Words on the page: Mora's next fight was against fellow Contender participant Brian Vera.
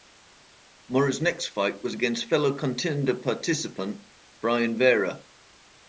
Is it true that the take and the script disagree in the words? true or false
false